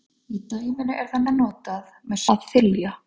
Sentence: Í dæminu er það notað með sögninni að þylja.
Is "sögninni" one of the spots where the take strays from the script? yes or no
yes